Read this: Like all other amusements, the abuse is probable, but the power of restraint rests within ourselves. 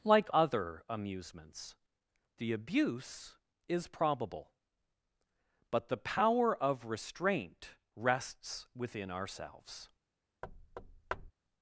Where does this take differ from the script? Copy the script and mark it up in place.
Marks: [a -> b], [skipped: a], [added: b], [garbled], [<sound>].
Like [skipped: all] other amusements, the abuse is probable, but the power of restraint rests within ourselves. [thud]